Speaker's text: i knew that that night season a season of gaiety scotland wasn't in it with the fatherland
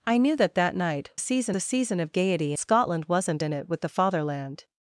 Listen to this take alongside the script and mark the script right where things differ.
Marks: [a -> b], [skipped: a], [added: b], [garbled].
i knew that that night season a season of gaiety scotland wasn't in it with the fatherland